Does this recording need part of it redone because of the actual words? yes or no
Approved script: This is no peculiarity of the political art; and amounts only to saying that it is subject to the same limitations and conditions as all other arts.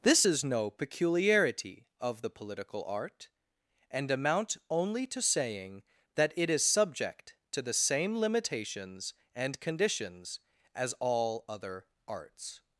yes